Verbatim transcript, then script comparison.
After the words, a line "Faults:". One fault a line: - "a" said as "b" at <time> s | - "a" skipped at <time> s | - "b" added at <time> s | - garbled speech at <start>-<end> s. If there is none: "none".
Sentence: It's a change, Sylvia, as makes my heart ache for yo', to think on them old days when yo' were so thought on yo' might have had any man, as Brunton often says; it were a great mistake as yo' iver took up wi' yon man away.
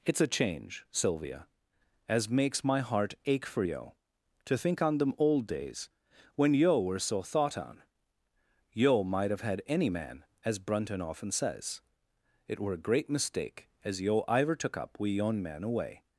It's a change, Sylvia, as makes my heart ache for yo', to think on them old days when yo' were so thought on yo' might have had any man, as Brunton often says; it were a great mistake as yo' iver took up wi' yon man away.
Faults:
none